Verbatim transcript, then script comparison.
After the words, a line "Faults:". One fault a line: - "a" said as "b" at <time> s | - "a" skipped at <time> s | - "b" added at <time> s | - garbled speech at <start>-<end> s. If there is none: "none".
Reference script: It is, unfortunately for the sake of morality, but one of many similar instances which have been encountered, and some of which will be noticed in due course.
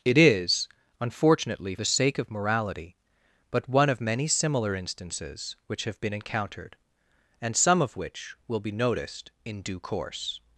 It is, unfortunately the sake of morality, but one of many similar instances which have been encountered, and some of which will be noticed in due course.
Faults:
- "for" skipped at 1.8 s